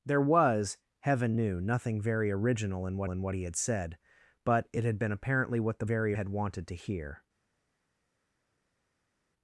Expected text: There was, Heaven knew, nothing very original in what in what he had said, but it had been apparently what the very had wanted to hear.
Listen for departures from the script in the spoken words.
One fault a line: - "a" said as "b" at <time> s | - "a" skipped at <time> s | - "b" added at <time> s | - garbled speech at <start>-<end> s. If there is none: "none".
none